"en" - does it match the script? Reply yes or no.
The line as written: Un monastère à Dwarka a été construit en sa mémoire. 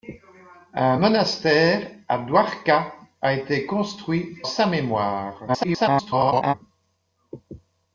no